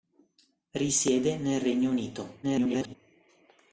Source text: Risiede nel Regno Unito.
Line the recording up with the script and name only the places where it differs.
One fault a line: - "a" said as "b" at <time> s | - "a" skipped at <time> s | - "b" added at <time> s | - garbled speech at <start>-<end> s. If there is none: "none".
- garbled speech at 2.4-3.0 s